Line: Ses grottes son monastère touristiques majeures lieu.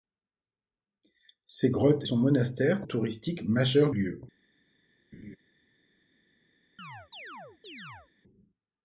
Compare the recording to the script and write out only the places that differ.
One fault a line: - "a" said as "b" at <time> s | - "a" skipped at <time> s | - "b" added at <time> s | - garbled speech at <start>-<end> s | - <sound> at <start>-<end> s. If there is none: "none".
- laugh at 5.1-5.4 s
- chirp at 6.8-8.1 s